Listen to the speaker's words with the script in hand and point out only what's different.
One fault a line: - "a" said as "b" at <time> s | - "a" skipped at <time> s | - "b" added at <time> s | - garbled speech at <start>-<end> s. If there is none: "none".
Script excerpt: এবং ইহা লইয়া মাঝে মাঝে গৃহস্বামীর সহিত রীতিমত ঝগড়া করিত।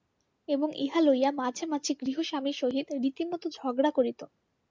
none